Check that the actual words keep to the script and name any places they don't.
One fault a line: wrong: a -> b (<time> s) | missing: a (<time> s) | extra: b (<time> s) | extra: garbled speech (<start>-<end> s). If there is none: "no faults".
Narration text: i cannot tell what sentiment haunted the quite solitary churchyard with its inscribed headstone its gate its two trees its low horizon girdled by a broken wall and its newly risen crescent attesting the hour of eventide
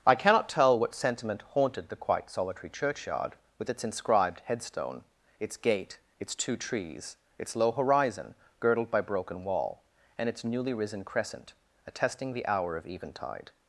missing: a (9.0 s)